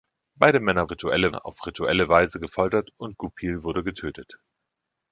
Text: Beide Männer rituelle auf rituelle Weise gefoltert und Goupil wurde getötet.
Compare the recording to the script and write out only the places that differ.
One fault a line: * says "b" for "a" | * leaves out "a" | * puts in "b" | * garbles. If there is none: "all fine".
all fine